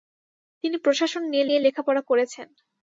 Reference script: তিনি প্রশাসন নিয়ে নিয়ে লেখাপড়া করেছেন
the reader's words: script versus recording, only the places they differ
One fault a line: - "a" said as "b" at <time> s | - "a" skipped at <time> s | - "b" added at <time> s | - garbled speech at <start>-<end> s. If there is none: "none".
none